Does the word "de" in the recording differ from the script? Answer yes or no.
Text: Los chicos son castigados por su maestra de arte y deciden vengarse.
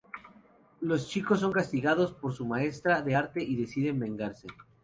no